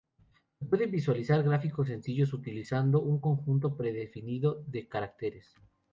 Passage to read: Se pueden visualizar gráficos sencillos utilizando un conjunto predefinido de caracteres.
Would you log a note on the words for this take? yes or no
no